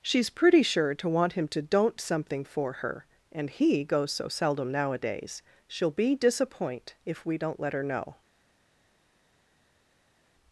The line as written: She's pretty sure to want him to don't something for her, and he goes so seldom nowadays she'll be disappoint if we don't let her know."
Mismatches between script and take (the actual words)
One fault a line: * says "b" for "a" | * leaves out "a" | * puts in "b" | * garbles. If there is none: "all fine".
all fine